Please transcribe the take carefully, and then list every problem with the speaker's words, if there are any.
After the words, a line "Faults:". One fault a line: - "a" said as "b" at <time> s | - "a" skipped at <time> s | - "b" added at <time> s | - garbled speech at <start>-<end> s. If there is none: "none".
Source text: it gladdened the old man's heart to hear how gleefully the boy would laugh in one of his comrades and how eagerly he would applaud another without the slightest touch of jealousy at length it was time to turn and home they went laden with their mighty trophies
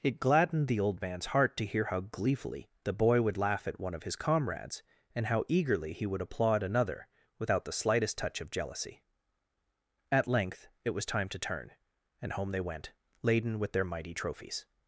it gladdened the old man's heart to hear how gleefully the boy would laugh at one of his comrades and how eagerly he would applaud another without the slightest touch of jealousy at length it was time to turn and home they went laden with their mighty trophies
Faults:
- "in" said as "at" at 3.7 s